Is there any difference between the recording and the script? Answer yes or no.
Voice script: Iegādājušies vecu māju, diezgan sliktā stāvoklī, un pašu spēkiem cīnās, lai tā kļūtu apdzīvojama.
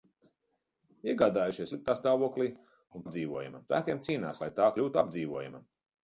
yes